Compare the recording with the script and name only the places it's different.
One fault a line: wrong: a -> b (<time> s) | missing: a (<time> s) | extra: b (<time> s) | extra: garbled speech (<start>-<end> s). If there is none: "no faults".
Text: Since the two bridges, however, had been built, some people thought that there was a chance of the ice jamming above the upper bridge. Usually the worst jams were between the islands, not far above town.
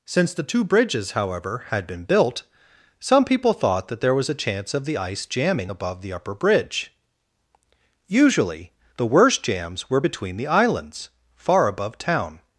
missing: not (11.1 s)